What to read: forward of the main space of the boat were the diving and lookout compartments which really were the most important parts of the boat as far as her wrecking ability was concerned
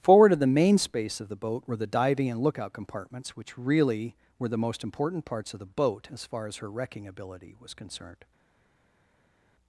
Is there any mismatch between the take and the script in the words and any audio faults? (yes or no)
no